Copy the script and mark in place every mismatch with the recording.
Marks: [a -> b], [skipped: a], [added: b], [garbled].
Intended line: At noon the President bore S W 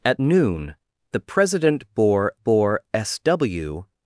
At noon the President bore [added: bore] S W